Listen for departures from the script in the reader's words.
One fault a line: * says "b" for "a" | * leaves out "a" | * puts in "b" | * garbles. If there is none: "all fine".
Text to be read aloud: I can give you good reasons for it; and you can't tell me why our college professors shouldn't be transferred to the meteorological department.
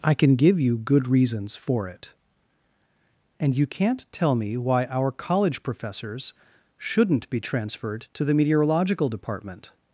all fine